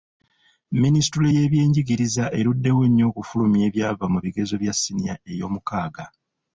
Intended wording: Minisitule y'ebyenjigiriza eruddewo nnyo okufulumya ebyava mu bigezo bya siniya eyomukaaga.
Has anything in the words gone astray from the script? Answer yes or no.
no